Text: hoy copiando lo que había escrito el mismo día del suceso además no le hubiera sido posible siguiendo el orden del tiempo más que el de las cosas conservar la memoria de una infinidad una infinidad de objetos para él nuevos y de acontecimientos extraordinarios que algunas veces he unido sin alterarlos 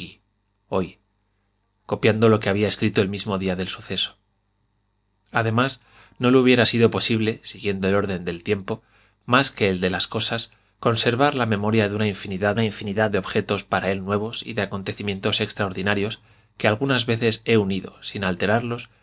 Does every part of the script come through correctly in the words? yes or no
yes